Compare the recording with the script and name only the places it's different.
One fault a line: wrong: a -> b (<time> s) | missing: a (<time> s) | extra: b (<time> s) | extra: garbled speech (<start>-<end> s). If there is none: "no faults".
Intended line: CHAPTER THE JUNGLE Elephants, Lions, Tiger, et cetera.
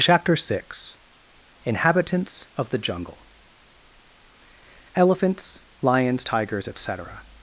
extra: six INHABITANTS OF (0.3 s)
wrong: Tiger -> Tigers (6.2 s)